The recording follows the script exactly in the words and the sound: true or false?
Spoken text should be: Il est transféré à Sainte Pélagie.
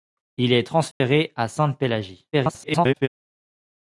false